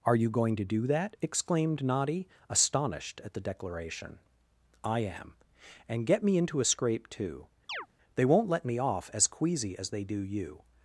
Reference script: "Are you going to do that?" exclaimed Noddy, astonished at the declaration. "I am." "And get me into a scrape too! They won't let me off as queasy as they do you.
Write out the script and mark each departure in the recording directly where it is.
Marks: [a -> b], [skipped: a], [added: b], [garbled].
"Are you going to do that?" exclaimed Noddy, astonished at the declaration. "I am." "And get me into a scrape too! They won't let me off as queasy as they do you.